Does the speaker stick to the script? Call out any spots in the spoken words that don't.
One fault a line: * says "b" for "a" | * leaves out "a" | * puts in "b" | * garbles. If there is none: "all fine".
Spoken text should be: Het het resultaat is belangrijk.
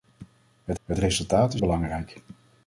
all fine